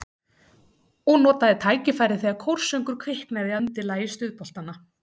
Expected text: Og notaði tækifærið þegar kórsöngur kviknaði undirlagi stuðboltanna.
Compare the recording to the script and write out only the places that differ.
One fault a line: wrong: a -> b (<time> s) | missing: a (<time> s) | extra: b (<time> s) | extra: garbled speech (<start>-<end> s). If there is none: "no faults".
no faults